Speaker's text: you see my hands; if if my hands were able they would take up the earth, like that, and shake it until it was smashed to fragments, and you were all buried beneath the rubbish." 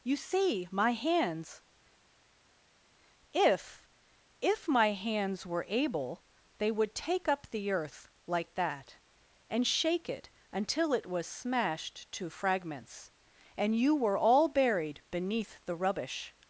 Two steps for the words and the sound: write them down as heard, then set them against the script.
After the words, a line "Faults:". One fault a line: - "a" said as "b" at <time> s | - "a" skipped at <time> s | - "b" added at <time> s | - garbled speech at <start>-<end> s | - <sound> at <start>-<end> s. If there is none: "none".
you see my hands; if if my hands were able they would take up the earth, like that, and shake it until it was smashed to fragments, and you were all buried beneath the rubbish."
Faults:
none